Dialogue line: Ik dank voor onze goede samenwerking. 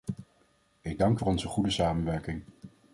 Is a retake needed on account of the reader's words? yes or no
no